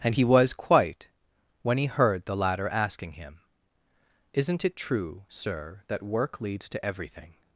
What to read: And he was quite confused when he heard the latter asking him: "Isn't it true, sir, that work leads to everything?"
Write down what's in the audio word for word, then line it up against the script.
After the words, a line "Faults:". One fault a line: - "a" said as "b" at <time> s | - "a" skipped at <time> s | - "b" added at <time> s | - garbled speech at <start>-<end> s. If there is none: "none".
And he was quite when he heard the latter asking him: "Isn't it true, sir, that work leads to everything?"
Faults:
- "confused" skipped at 1.1 s